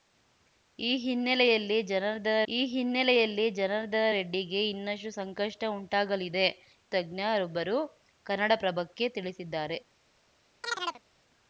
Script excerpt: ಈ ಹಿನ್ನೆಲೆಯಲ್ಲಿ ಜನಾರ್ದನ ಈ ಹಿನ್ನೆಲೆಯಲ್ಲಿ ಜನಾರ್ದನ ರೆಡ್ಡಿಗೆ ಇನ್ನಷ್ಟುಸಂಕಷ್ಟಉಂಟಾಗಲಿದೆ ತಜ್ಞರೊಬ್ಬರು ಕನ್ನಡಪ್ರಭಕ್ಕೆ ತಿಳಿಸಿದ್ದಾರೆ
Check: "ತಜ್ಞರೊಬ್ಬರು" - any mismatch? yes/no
no